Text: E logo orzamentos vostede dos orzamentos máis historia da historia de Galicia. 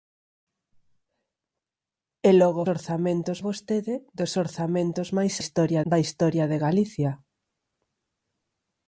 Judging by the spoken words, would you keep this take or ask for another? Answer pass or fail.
pass